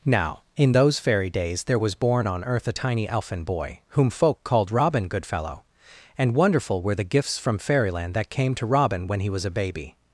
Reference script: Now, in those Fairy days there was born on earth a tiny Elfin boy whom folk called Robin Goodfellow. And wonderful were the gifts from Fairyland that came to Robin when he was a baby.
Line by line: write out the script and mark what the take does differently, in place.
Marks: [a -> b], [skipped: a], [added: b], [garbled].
Now, in those Fairy days there was born on earth a tiny Elfin boy whom folk called Robin Goodfellow. And wonderful were the gifts from Fairyland that came to Robin when he was a baby.